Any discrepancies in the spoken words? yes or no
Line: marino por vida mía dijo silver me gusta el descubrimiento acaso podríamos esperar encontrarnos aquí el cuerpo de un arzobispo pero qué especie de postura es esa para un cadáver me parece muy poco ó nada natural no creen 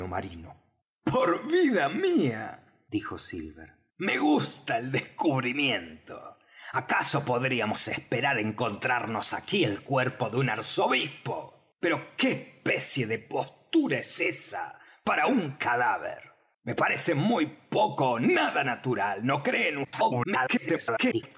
yes